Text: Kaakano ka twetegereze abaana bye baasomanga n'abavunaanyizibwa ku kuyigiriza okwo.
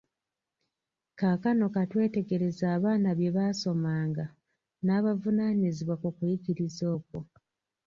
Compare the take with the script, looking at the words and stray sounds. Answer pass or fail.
pass